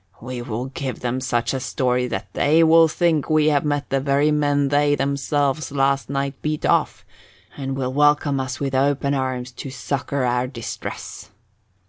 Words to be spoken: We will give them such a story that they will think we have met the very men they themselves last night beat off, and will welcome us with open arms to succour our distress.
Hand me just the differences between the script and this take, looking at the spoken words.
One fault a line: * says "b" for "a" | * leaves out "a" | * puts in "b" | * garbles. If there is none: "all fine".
all fine